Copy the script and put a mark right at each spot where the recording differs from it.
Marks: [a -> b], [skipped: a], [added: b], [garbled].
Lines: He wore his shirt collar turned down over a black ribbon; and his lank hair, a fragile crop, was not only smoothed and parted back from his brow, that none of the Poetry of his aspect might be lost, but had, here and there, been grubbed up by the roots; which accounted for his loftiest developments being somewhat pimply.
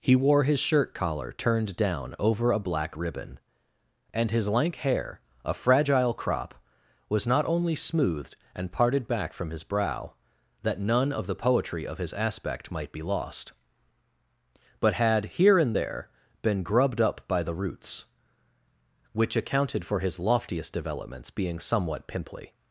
He wore his shirt collar turned down over a black ribbon; and his lank hair, a fragile crop, was not only smoothed and parted back from his brow, that none of the Poetry of his aspect might be lost, but had, here and there, been grubbed up by the roots; which accounted for his loftiest developments being somewhat pimply.